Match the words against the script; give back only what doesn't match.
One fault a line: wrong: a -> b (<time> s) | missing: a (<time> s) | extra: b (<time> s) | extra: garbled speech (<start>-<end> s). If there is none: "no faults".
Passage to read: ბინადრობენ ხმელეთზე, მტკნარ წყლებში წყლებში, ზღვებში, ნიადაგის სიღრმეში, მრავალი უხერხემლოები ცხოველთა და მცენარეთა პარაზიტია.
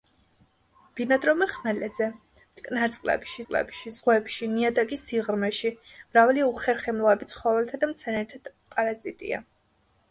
no faults